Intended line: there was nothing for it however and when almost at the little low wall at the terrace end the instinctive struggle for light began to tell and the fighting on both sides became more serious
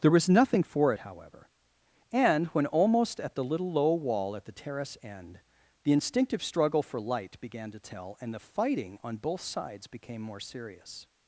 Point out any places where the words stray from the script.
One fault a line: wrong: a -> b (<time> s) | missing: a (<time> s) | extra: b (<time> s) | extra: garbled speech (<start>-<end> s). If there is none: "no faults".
no faults